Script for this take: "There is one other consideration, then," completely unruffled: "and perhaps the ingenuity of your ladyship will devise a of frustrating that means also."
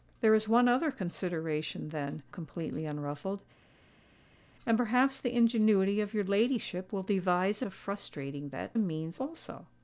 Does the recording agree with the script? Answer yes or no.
yes